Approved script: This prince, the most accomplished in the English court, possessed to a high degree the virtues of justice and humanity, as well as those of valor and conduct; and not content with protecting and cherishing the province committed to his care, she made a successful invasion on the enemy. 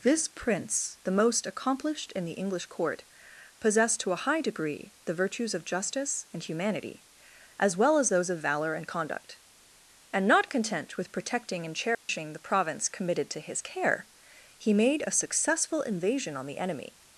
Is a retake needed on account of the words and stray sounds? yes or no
yes